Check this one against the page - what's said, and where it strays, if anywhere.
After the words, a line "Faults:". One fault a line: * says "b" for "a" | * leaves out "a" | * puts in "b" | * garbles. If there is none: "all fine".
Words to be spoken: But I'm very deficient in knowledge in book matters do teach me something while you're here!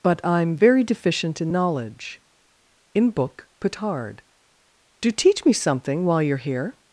But I'm very deficient in knowledge in book petard do teach me something while you're here!
Faults:
* says "petard" for "matters"